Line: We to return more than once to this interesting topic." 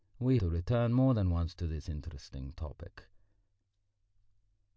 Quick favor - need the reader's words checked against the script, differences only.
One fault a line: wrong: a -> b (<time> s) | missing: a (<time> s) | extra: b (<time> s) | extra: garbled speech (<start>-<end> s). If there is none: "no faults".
no faults